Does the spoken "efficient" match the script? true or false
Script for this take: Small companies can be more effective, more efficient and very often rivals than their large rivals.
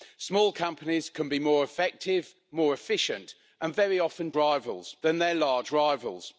true